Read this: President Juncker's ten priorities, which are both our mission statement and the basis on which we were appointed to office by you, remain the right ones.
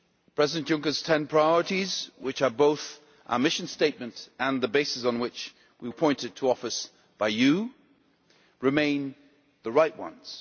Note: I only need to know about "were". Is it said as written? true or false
false